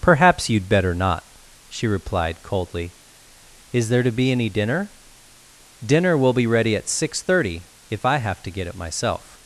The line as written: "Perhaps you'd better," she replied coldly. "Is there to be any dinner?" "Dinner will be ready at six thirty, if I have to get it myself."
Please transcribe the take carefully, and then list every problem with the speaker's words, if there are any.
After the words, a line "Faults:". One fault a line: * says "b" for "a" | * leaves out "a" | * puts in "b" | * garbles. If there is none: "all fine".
"Perhaps you'd better not," she replied coldly. "Is there to be any dinner?" "Dinner will be ready at six thirty, if I have to get it myself."
Faults:
* puts in "not"